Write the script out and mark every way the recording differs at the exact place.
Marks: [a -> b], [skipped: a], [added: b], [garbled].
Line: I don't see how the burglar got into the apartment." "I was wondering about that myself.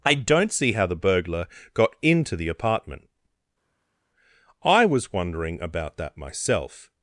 I don't see how the burglar got into the apartment." "I was wondering about that myself.